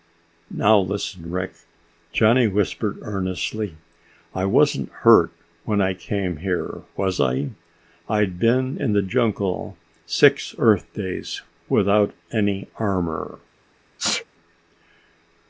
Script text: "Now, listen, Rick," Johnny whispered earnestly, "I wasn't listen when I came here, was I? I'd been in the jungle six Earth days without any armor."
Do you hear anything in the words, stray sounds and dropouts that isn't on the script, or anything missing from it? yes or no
yes